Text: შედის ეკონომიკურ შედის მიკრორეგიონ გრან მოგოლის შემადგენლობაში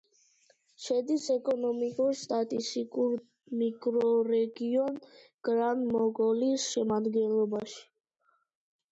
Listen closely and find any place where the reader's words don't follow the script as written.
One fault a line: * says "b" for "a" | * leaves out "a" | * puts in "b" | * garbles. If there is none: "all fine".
* says "სტატისტიკურ" for "შედის"